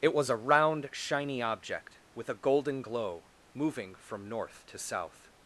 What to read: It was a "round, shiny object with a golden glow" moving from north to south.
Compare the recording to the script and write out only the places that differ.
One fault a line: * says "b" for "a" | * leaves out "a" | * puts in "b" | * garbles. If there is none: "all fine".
all fine